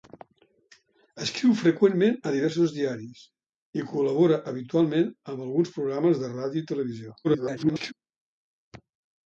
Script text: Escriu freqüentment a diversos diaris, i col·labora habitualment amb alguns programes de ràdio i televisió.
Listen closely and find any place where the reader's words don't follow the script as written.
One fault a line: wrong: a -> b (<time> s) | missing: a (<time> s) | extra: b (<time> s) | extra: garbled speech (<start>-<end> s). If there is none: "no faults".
extra: garbled speech (7.2-7.9 s)